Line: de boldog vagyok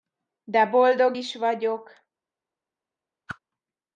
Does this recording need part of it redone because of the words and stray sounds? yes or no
yes